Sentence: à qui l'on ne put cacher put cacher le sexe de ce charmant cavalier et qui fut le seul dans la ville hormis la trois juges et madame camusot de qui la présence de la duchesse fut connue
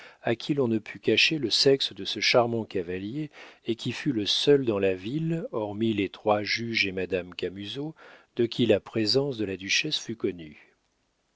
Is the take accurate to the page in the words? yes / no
no